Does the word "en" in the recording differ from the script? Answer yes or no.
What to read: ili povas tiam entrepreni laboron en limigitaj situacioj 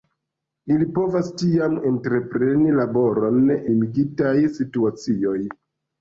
yes